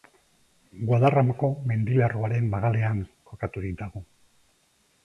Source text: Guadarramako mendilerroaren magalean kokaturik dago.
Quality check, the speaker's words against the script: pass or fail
pass